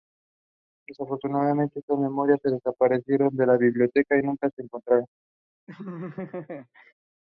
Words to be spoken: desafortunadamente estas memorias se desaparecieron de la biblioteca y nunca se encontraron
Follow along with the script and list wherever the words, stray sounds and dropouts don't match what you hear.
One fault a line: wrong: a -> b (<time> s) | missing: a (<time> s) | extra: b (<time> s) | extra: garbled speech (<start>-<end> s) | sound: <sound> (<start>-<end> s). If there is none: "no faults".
sound: laugh (5.7-6.9 s)